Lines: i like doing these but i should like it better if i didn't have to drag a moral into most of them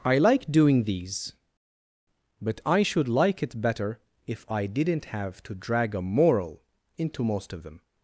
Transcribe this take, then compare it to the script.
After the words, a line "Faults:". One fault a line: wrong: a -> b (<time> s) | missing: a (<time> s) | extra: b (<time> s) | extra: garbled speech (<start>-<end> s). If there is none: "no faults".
i like doing these but i should like it better if i didn't have to drag a moral into most of them
Faults:
no faults